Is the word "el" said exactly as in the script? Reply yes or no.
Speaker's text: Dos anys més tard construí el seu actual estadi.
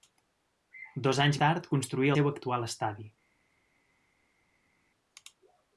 no